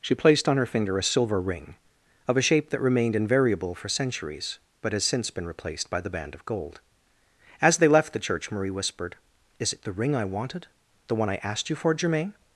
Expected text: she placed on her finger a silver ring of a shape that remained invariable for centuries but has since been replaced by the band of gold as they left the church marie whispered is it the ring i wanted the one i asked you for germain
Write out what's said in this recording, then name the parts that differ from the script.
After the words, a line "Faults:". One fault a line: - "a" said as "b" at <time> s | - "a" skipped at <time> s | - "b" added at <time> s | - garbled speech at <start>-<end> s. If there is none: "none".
she placed on her finger a silver ring of a shape that remained invariable for centuries but has since been replaced by the band of gold as they left the church marie whispered is it the ring i wanted the one i asked you for germain
Faults:
none